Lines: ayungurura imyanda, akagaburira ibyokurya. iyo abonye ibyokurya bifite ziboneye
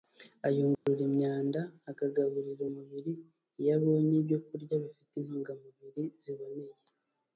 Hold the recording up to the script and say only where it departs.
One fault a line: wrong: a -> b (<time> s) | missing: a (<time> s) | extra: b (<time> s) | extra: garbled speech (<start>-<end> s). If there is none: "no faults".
wrong: ibyokurya -> umubiri (2.7 s)
extra: intungamubiri (5.2 s)